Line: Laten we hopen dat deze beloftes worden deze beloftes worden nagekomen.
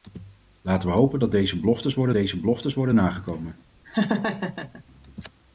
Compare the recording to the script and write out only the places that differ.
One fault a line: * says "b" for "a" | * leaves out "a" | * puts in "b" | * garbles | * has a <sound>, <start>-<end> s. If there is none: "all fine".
* has a laugh, 3.8-4.8 s